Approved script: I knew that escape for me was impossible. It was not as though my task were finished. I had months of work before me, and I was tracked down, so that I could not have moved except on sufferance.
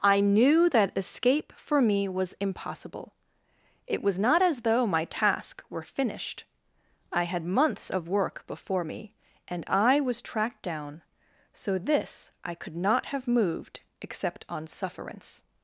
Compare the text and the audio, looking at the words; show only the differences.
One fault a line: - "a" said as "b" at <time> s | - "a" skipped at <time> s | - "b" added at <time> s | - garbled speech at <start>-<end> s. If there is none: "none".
- "that" said as "this" at 11.8 s